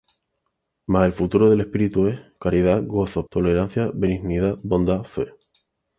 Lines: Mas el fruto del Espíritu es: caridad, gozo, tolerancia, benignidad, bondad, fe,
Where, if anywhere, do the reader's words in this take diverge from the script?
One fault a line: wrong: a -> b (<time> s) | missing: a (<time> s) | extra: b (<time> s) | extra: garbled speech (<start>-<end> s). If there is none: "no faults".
no faults